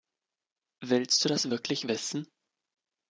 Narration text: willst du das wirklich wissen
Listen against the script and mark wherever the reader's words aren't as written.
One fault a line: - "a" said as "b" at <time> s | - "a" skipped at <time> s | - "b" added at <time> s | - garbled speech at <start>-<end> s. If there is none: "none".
none